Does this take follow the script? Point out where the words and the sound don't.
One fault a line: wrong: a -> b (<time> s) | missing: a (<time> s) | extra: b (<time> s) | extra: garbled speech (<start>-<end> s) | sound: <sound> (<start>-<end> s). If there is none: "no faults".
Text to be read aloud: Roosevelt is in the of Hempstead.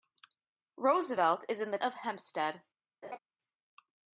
sound: laugh (3.0-3.2 s)